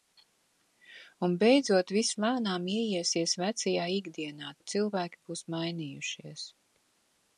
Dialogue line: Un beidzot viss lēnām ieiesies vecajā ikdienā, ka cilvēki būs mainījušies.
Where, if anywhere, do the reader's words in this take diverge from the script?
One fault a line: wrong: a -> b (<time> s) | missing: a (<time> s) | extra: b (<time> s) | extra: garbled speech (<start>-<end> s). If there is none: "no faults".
no faults